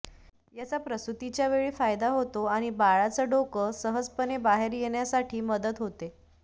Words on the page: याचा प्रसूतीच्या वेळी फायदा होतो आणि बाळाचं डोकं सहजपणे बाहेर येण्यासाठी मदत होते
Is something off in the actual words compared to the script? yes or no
no